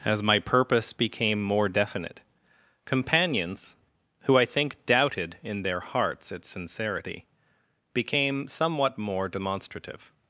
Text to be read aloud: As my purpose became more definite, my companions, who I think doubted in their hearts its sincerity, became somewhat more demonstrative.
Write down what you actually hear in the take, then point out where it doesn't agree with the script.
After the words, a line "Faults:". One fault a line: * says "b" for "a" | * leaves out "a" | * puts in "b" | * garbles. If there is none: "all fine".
As my purpose became more definite, companions, who I think doubted in their hearts its sincerity, became somewhat more demonstrative.
Faults:
* leaves out "my"